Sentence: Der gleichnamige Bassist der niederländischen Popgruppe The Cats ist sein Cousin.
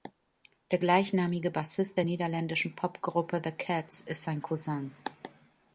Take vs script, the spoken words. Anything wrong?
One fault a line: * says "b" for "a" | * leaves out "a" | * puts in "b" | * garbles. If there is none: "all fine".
all fine